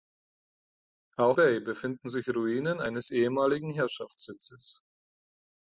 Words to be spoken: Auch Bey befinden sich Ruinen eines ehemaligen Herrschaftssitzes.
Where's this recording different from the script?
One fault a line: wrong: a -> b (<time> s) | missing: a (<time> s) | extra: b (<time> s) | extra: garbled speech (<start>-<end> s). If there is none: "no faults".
no faults